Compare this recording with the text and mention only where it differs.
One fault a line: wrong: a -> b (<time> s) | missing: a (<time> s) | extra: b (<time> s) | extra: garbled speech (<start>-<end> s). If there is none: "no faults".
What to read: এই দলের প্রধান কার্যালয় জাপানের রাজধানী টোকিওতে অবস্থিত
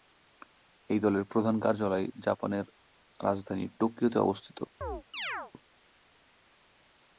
no faults